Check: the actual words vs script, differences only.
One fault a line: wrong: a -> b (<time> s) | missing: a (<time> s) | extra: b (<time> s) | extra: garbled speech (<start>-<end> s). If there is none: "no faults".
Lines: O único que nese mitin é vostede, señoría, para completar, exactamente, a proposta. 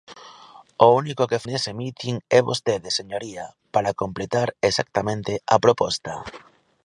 no faults